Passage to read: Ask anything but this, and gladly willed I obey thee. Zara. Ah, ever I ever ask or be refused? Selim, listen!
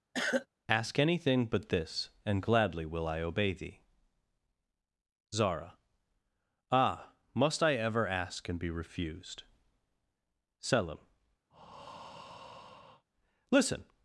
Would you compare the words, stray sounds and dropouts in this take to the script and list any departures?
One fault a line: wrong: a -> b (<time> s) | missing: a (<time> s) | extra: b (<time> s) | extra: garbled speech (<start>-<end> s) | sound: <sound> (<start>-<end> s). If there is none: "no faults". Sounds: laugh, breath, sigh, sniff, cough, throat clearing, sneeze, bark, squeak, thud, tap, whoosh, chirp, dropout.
sound: cough (0.1-0.5 s)
wrong: willed -> will (2.9 s)
wrong: ever -> must (7.3 s)
wrong: or -> and (8.5 s)
sound: breath (11.5-13.0 s)